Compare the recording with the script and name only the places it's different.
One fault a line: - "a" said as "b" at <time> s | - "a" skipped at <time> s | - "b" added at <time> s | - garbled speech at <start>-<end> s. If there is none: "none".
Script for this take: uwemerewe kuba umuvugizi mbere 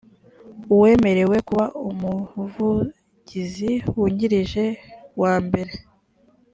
- "wungirije wa" added at 4.0 s